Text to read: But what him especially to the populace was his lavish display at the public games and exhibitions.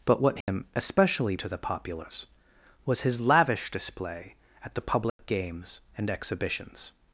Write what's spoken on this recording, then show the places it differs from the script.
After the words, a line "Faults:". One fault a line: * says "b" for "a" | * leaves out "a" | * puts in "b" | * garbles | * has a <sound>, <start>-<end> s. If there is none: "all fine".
But what him especially to the populace was his lavish display at the public games and exhibitions.
Faults:
* has a dropout, 0.4-0.5 s
* has a dropout, 5.1-5.2 s